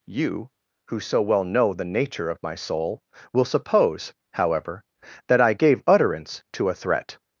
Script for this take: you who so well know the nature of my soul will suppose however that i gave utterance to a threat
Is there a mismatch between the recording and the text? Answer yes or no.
no